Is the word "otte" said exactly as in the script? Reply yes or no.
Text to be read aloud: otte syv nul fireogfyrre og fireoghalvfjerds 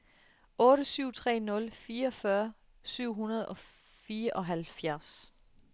yes